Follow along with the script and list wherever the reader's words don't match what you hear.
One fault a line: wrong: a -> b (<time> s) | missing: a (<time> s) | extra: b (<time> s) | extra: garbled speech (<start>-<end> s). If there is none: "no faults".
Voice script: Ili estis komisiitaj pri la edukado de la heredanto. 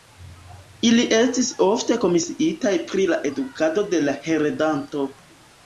extra: ofte (1.6 s)